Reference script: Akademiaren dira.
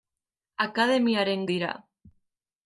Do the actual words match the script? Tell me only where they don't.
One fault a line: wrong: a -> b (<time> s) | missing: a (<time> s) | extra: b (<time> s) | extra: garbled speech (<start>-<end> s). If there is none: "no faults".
no faults